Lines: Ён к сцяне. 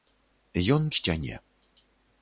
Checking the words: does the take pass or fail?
pass